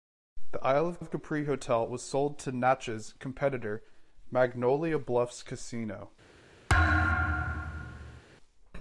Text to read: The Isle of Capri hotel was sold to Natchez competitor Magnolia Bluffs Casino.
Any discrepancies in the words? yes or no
yes